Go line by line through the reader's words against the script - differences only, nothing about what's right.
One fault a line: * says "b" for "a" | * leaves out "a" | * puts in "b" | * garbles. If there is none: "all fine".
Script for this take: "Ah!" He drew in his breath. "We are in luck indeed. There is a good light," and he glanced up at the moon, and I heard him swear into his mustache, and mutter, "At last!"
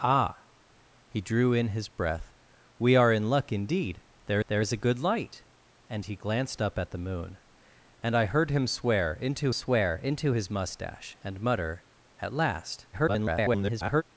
* puts in "there"
* puts in "swear into"
* garbles